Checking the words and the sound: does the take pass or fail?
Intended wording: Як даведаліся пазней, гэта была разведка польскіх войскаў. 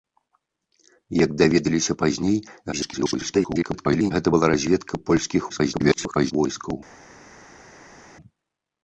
fail